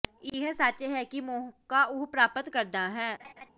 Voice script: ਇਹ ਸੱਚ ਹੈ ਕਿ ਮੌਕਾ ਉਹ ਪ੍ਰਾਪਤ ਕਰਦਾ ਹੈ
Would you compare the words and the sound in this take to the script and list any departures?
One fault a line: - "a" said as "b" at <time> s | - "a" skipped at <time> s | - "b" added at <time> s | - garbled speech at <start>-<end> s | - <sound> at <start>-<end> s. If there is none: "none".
- laugh at 3.2-3.5 s